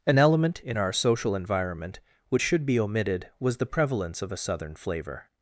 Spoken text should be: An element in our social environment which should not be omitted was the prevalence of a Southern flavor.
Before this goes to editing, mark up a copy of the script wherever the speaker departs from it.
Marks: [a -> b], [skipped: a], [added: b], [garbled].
An element in our social environment which should [skipped: not] be omitted was the prevalence of a Southern flavor.